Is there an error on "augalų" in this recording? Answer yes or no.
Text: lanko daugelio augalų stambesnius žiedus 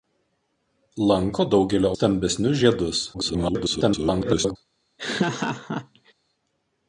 yes